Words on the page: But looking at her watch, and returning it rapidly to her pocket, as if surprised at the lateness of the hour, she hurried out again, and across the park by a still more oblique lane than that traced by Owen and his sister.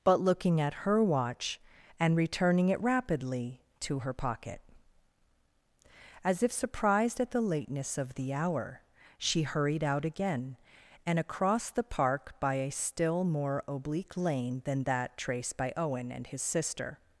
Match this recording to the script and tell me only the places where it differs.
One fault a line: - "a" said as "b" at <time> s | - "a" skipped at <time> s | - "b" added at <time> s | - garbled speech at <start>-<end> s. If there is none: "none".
none